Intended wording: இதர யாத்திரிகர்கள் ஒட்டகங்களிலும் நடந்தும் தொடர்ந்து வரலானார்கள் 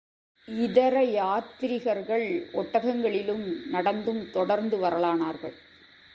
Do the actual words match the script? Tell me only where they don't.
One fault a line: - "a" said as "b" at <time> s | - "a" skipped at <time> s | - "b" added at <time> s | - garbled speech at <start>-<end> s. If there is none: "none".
none